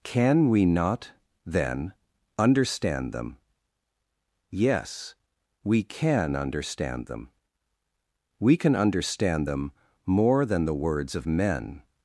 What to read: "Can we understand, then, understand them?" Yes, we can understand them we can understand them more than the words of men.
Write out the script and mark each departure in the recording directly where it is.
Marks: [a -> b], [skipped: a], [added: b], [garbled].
"Can we [understand, -> not] then, understand them?" Yes, we can understand them we can understand them more than the words of men.